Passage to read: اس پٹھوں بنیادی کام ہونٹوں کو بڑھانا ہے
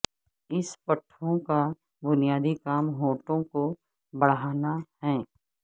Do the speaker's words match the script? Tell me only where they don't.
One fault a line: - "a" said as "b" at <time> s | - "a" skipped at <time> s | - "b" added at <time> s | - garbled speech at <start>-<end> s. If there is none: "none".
- "کا" added at 1.5 s